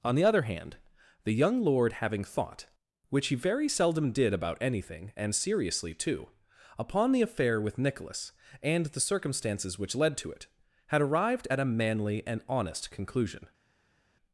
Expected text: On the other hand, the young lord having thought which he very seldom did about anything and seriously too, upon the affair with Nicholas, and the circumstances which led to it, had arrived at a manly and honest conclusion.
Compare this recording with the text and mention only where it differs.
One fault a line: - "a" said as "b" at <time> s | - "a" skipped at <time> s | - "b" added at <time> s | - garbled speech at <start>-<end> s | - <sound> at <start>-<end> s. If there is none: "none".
none